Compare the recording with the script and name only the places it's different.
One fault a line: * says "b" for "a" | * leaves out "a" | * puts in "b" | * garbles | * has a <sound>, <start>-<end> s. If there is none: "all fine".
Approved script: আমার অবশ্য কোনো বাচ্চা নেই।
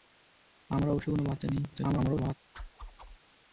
* garbles
* has a whoosh, 2.5-3.2 s